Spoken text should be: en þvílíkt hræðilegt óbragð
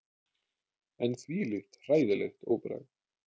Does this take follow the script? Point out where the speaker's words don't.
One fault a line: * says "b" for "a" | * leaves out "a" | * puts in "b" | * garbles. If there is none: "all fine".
all fine